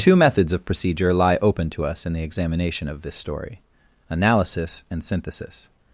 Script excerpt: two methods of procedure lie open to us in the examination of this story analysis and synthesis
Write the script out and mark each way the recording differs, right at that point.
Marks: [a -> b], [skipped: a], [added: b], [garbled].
two methods of procedure lie open to us in the examination of this story analysis and synthesis